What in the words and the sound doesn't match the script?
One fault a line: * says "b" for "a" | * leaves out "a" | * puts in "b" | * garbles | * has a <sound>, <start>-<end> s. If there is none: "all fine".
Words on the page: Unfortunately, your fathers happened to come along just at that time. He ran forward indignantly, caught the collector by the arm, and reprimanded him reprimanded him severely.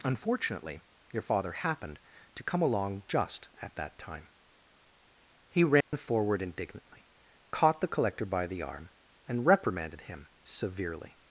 * says "father" for "fathers"
* has a dropout, 5.8-5.9 s
* leaves out "reprimanded him"